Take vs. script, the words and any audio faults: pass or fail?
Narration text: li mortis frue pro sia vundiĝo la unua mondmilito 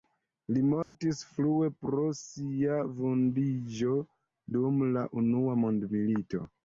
fail